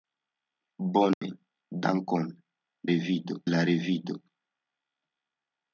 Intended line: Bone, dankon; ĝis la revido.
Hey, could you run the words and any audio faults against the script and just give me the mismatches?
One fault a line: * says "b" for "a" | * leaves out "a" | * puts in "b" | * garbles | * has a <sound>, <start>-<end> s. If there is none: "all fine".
* has a dropout, 1.1-1.2 s
* says "revido" for "ĝis"